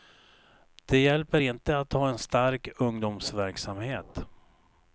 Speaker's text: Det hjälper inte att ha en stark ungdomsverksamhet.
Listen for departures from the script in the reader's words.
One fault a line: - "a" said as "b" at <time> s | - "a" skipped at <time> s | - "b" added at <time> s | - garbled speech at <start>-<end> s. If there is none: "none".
none